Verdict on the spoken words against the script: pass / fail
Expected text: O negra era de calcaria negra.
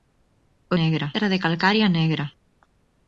pass